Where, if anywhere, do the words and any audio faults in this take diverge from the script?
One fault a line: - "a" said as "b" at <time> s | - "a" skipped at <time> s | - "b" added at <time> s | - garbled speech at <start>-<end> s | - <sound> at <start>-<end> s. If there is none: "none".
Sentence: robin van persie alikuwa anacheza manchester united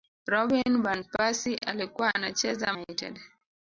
- "manchester" skipped at 2.7 s